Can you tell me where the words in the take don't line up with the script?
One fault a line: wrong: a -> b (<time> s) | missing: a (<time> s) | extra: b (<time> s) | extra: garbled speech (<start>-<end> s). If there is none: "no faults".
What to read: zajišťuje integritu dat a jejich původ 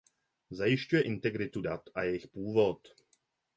no faults